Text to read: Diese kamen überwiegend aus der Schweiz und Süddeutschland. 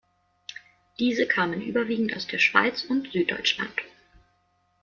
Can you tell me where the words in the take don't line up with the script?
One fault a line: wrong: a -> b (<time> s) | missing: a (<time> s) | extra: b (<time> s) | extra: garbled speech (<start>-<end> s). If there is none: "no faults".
no faults